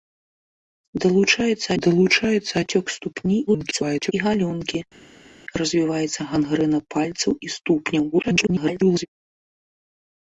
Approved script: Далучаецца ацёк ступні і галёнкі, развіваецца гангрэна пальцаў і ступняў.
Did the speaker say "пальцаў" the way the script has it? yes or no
yes